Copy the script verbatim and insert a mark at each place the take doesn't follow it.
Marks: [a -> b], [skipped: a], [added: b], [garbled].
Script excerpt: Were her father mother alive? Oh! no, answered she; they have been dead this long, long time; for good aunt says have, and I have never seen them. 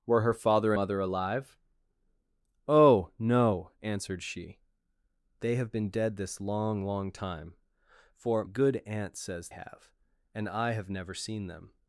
Were her father mother alive? Oh! no, answered she; they have been dead this long, long time; for good aunt says have, and I have never seen them.